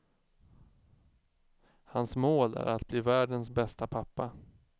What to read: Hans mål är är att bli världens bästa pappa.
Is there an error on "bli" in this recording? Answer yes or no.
no